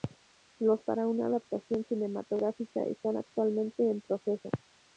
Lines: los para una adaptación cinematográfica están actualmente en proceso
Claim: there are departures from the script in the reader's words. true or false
false